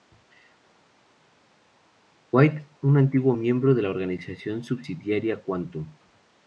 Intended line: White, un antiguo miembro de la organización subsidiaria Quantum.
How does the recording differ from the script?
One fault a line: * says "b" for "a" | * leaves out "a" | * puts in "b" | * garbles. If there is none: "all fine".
all fine